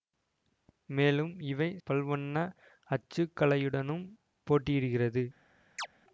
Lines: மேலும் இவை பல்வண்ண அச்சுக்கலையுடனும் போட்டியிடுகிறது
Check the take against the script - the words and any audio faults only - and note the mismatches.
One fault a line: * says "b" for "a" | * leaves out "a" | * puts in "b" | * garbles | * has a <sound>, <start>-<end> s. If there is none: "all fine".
* has a chirp, 5.8-5.9 s